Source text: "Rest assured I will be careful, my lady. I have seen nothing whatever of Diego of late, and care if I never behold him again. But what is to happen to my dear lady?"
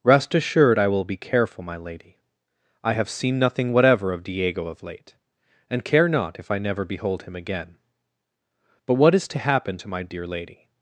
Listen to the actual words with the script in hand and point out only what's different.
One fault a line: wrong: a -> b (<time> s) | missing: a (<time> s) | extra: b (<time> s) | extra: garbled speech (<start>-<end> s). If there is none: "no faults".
extra: not (6.1 s)